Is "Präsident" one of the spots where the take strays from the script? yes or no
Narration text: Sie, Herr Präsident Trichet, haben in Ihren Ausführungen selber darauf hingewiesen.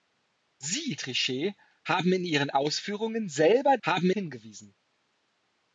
yes